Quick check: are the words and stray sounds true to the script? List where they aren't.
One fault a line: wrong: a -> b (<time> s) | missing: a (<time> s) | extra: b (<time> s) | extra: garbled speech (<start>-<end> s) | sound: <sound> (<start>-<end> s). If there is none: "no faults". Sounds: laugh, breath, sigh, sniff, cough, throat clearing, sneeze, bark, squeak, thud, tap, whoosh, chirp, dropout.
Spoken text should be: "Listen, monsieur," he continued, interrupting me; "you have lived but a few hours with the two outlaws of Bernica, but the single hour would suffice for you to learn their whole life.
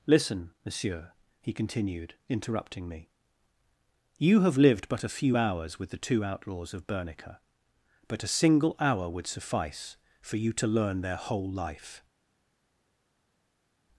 wrong: the -> a (8.2 s)